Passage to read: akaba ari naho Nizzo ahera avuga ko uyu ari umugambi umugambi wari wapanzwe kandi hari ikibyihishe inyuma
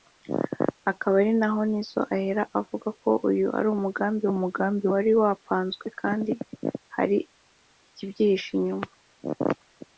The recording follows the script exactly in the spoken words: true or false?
true